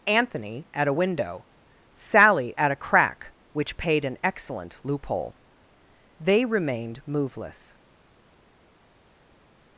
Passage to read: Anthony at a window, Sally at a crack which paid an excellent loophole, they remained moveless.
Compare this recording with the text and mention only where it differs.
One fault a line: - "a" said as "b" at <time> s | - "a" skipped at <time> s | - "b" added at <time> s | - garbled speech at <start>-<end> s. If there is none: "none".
none